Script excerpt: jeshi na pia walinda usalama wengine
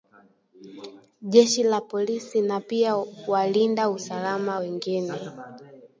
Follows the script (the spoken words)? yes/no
no